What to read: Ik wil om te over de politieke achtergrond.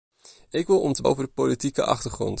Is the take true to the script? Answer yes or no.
yes